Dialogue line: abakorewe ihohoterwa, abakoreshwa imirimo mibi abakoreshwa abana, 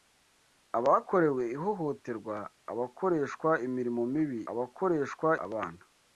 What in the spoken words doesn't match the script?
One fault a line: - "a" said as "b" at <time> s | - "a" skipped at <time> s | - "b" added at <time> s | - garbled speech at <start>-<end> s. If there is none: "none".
none